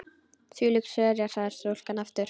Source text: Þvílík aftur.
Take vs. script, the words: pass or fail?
fail